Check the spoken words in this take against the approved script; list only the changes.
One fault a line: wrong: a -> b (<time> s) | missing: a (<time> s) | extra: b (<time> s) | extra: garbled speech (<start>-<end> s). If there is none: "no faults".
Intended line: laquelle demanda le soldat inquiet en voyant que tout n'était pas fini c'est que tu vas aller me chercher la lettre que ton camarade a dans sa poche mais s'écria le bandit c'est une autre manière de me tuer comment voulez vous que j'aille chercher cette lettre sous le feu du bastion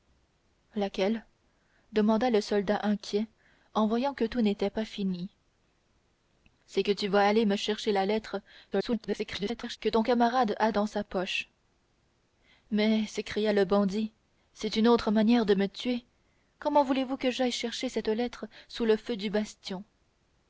extra: garbled speech (8.7-9.8 s)